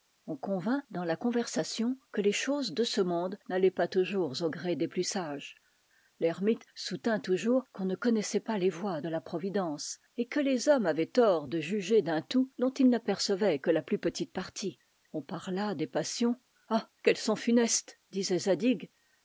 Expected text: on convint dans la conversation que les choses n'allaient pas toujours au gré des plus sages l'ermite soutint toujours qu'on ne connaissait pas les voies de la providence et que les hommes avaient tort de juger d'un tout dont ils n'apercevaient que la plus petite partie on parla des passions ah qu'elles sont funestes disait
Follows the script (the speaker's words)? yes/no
no